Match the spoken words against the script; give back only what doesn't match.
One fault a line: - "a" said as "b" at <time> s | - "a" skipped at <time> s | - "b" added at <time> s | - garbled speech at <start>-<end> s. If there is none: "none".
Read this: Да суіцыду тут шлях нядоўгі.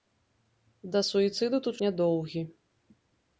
- "шлях" skipped at 1.8 s